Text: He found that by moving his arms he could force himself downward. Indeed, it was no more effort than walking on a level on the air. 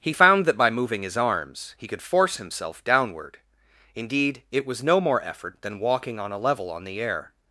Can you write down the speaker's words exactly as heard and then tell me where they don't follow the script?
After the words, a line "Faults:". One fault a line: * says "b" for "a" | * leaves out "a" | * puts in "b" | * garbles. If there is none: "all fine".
He found that by moving his arms he could force himself downward. Indeed, it was no more effort than walking on a level on the air.
Faults:
all fine